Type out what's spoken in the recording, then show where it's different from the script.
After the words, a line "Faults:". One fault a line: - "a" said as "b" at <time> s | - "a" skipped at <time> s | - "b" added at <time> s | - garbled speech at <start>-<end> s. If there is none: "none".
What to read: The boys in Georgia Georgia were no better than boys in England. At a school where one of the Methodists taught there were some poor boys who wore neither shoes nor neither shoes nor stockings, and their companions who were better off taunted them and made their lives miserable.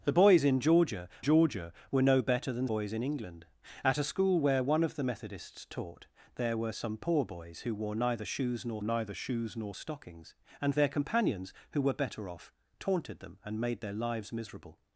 The boys in Georgia Georgia were no better than boys in England. At a school where one of the Methodists taught there were some poor boys who wore neither shoes nor neither shoes nor stockings, and their companions who were better off taunted them and made their lives miserable.
Faults:
none